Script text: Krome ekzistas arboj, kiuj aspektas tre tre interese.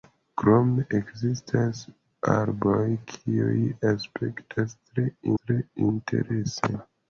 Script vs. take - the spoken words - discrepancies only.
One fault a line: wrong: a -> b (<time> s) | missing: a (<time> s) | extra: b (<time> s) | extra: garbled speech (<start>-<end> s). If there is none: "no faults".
no faults